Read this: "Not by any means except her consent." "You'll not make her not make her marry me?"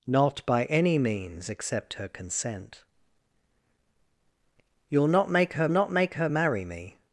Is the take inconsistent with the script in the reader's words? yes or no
no